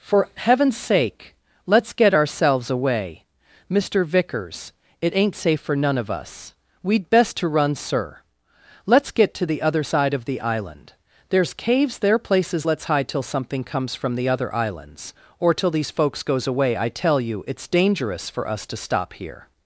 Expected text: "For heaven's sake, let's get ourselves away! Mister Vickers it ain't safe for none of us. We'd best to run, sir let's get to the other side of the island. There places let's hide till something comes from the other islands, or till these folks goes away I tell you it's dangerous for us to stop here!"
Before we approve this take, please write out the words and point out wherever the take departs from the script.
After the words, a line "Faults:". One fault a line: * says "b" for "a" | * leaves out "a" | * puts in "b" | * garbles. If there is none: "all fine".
"For heaven's sake, let's get ourselves away! Mister Vickers it ain't safe for none of us. We'd best to run, sir let's get to the other side of the island. There's caves there places let's hide till something comes from the other islands, or till these folks goes away I tell you it's dangerous for us to stop here!"
Faults:
* puts in "There's caves"